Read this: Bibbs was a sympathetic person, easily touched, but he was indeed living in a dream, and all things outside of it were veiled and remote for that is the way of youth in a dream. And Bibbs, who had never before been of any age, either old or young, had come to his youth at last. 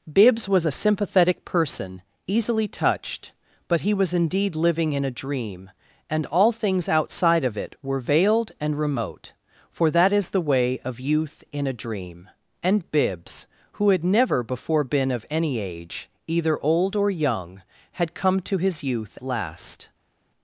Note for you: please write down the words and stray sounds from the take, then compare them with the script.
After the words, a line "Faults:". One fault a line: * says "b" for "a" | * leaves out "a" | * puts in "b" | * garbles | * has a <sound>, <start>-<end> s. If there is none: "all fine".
Bibbs was a sympathetic person, easily touched, but he was indeed living in a dream, and all things outside of it were veiled and remote for that is the way of youth in a dream. And Bibbs, who had never before been of any age, either old or young, had come to his youth last.
Faults:
* leaves out "at"